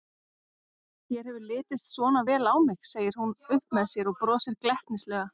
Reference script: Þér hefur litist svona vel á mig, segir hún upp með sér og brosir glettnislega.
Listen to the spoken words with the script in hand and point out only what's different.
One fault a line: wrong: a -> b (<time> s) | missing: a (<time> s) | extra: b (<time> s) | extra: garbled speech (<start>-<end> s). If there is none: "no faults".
no faults